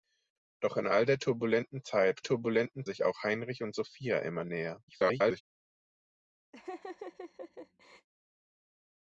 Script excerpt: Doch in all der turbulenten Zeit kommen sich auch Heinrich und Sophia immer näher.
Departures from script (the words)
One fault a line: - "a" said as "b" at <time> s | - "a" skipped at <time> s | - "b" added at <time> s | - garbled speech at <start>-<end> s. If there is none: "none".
- "kommen" said as "turbulenten" at 2.2 s
- garbled speech at 4.9-5.4 s